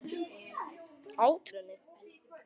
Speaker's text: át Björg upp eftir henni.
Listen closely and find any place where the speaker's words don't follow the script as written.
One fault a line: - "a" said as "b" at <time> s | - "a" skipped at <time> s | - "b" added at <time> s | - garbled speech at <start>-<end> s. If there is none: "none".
- "Björg upp eftir" skipped at 1.5 s